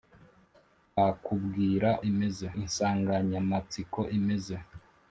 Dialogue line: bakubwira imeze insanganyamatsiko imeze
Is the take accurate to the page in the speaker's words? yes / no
yes